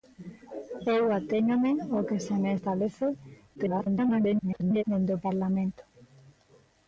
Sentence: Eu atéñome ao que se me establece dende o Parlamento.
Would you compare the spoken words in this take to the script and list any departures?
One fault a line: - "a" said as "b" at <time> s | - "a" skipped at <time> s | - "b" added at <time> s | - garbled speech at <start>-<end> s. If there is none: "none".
- garbled speech at 3.5-4.8 s